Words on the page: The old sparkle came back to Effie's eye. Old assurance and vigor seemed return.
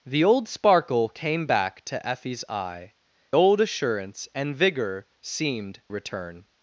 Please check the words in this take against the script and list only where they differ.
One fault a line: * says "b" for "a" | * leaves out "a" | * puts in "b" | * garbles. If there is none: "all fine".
all fine